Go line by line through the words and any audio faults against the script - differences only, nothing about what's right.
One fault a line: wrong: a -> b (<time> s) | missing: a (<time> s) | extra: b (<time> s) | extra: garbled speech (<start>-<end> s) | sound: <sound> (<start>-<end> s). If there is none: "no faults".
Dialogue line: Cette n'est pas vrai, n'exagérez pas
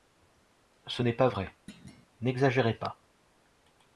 wrong: Cette -> Ce (0.9 s)
sound: thud (1.7-2.1 s)